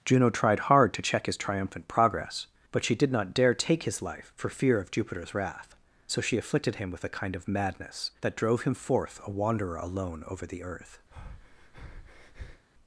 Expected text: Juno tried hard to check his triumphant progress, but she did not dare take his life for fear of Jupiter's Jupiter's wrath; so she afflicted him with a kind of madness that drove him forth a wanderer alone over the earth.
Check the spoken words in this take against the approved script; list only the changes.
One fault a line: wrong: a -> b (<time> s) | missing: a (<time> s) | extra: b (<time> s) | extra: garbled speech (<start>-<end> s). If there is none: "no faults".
missing: Jupiter's (5.3 s)